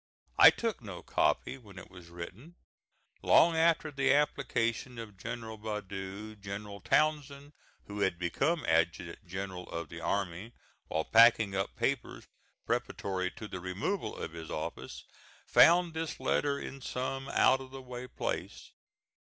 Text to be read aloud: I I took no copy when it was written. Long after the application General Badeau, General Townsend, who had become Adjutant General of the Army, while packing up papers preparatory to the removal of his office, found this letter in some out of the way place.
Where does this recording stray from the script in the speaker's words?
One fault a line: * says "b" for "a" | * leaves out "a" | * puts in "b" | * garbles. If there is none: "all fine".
* leaves out "I"
* puts in "of"